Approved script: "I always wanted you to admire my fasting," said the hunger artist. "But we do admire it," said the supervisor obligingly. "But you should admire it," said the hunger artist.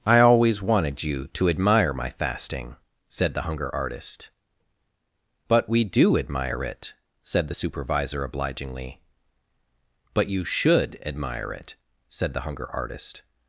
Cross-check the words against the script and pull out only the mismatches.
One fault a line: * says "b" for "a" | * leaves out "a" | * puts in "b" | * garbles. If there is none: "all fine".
all fine